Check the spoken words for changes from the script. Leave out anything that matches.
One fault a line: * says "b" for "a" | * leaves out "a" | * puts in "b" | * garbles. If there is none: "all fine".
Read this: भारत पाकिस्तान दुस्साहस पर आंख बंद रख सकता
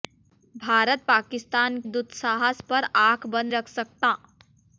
all fine